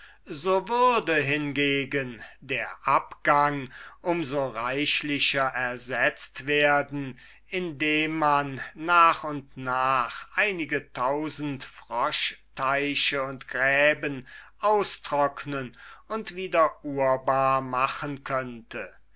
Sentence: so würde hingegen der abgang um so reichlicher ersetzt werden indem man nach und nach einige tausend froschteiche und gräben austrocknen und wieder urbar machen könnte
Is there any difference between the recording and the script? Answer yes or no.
no